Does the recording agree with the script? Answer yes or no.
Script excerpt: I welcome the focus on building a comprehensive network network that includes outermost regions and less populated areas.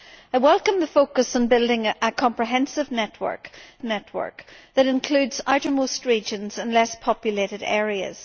yes